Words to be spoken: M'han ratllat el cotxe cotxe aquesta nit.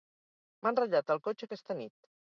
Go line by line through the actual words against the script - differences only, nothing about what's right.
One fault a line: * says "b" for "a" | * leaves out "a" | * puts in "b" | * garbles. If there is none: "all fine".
* leaves out "cotxe"